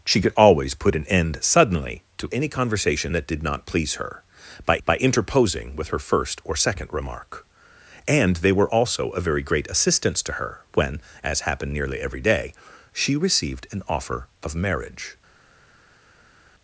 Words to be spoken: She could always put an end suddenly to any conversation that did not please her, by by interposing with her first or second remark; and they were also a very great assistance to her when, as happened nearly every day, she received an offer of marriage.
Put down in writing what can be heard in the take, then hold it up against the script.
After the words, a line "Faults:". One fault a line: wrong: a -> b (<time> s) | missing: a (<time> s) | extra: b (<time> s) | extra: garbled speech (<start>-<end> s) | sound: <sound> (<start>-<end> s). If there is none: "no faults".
She could always put an end suddenly to any conversation that did not please her, by by interposing with her first or second remark; and they were also a very great assistance to her when, as happened nearly every day, she received an offer of marriage.
Faults:
no faults